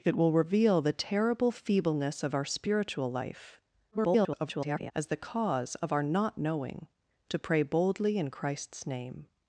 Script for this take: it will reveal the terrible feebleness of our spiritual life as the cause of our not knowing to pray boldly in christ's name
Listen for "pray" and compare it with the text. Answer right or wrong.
right